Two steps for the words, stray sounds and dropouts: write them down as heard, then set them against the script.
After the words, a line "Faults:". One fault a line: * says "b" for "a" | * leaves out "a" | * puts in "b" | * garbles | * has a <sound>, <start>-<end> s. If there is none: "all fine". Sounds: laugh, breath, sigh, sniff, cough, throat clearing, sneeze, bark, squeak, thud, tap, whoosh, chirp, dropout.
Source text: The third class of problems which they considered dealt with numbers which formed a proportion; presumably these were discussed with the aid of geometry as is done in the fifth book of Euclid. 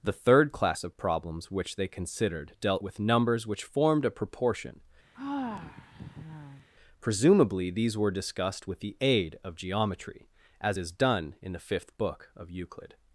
The third class of problems which they considered dealt with numbers which formed a proportion; presumably these were discussed with the aid of geometry as is done in the fifth book of Euclid.
Faults:
* has a sigh, 5.1-6.7 s